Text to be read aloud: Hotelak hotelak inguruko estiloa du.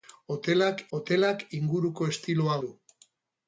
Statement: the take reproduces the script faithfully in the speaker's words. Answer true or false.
true